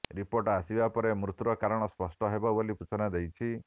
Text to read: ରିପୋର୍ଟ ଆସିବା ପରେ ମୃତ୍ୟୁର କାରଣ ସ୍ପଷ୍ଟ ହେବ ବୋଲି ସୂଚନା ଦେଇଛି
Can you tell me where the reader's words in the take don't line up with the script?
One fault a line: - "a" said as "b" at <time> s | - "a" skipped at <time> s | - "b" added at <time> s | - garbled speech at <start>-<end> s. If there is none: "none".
none